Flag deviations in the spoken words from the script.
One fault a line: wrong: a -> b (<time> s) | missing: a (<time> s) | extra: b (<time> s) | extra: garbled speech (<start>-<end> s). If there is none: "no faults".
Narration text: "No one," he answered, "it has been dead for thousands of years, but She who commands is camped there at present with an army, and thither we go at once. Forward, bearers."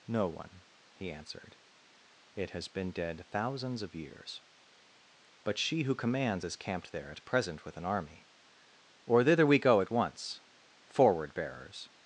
missing: for (3.2 s)
wrong: and -> or (9.0 s)